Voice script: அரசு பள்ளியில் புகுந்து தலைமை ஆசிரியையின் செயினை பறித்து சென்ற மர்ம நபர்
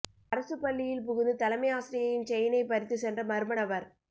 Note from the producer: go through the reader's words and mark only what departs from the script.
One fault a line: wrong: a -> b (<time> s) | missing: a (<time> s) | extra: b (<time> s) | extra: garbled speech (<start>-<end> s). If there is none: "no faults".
no faults